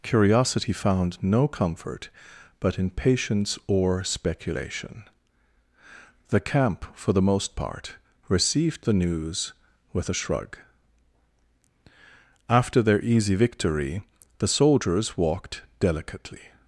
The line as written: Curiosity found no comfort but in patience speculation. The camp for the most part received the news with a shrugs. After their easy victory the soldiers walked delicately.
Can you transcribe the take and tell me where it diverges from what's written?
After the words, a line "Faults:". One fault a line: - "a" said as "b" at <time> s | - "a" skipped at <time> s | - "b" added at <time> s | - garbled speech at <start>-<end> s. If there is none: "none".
Curiosity found no comfort but in patience or speculation. The camp for the most part received the news with a shrug. After their easy victory the soldiers walked delicately.
Faults:
- "or" added at 3.7 s
- "shrugs" said as "shrug" at 10.1 s